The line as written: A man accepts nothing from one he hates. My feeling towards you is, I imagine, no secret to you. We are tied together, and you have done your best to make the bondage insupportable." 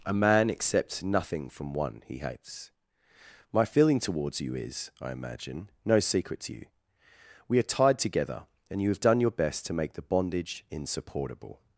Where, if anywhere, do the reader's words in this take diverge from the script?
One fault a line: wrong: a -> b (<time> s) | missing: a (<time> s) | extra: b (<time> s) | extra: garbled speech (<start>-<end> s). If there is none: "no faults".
no faults